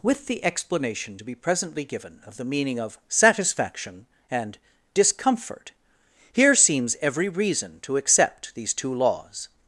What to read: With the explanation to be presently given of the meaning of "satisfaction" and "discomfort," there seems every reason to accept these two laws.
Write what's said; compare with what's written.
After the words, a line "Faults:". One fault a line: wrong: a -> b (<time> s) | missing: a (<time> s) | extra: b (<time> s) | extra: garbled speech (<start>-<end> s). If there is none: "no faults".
With the explanation to be presently given of the meaning of "satisfaction" and "discomfort," here seems every reason to accept these two laws.
Faults:
wrong: there -> here (6.3 s)